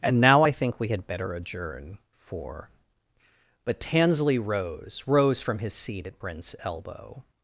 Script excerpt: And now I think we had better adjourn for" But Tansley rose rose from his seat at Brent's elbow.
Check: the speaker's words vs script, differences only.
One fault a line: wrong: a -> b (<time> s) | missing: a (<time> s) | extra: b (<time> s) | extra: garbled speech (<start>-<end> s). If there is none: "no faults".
no faults